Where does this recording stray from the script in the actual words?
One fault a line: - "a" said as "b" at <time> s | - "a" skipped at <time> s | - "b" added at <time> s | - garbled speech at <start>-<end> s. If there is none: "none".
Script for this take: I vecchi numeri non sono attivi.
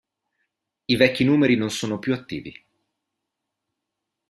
- "più" added at 2.0 s